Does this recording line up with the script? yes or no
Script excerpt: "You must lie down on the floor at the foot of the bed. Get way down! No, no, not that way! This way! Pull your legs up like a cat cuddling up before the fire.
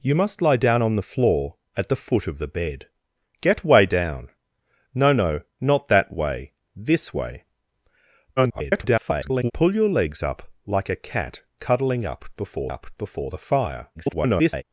no